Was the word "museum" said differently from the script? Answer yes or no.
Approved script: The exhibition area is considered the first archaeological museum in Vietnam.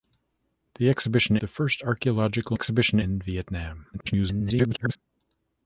yes